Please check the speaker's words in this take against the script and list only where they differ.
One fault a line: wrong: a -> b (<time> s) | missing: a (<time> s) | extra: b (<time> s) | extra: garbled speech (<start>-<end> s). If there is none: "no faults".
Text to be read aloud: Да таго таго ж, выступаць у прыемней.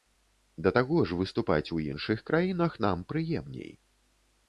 missing: таго (1.0 s)
extra: іншых краінах нам (1.9 s)